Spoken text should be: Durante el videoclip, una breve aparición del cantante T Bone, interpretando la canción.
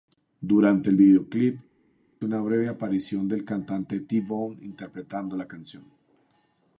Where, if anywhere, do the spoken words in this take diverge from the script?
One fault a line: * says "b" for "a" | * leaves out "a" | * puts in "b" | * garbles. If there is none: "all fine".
all fine